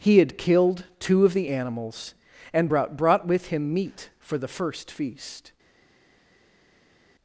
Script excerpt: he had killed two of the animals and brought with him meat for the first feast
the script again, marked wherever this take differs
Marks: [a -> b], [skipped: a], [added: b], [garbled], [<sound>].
he had killed two of the animals and brought [added: brought] with him meat for the first feast